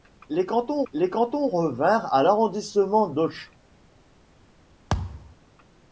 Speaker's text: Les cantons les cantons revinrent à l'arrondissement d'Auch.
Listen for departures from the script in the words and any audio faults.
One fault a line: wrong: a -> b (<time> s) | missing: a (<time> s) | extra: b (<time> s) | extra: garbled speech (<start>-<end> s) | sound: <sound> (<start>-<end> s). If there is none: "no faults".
sound: thud (4.9-5.4 s)